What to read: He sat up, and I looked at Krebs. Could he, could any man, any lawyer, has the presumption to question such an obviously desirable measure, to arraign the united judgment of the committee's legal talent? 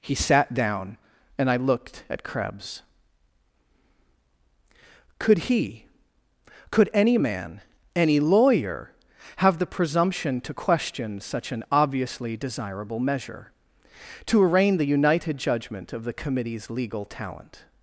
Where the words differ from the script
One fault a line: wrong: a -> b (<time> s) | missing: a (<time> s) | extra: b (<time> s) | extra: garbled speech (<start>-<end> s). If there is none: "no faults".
wrong: up -> down (0.5 s)
wrong: has -> have (9.4 s)